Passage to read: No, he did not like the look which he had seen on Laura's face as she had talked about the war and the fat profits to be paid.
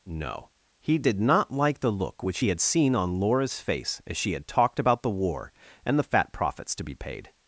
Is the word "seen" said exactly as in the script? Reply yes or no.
yes